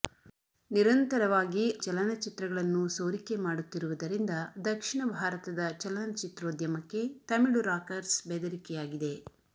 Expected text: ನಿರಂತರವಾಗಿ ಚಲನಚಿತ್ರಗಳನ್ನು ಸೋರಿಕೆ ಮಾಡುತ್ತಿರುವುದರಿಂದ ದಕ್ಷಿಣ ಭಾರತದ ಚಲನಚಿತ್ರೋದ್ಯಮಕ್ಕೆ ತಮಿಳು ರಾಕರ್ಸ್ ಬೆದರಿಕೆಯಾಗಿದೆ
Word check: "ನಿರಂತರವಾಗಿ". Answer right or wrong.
right